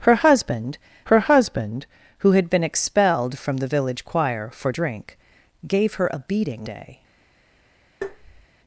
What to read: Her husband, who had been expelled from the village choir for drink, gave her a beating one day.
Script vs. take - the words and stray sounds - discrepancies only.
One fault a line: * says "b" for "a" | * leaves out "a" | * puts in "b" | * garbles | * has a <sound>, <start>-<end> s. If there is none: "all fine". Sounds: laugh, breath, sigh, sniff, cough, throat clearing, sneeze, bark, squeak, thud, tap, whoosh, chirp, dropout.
* puts in "her husband"
* leaves out "one"
* has a tap, 8.0-8.5 s